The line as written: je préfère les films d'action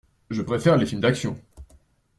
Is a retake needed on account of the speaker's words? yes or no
no